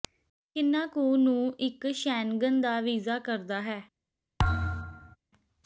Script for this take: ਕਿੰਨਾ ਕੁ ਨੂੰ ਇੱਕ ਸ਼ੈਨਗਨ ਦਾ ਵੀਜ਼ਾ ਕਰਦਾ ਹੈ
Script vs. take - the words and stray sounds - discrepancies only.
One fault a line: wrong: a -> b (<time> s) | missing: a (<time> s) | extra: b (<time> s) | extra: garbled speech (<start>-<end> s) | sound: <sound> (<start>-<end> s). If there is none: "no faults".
sound: thud (4.4-5.2 s)